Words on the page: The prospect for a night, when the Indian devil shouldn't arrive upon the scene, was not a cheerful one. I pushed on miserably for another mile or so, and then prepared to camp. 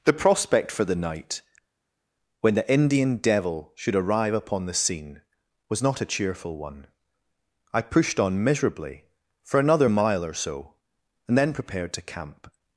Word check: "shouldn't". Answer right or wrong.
wrong